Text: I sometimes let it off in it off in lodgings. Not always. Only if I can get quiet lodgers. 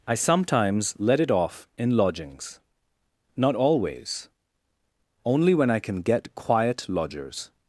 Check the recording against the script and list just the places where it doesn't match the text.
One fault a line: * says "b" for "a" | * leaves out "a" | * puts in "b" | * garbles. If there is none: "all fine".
* leaves out "it off in"
* says "when" for "if"